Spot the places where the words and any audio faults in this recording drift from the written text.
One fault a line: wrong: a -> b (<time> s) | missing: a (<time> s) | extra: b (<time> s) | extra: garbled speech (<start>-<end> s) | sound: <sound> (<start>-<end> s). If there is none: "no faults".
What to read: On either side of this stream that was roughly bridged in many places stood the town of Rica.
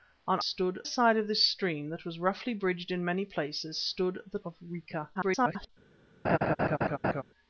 wrong: either -> stood (0.4 s)
missing: town (4.4 s)
extra: garbled speech (5.1-5.7 s)
sound: laugh (6.2-7.2 s)